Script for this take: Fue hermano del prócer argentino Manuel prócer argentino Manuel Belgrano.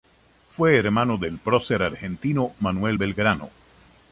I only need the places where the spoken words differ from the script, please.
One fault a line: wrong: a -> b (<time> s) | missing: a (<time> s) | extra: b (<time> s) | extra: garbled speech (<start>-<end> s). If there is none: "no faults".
missing: prócer argentino Manuel (3.0 s)